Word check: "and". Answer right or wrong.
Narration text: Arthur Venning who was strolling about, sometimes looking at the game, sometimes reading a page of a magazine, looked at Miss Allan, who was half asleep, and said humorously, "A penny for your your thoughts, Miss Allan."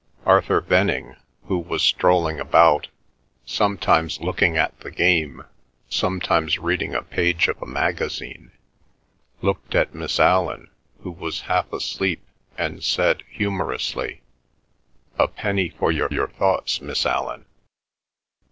right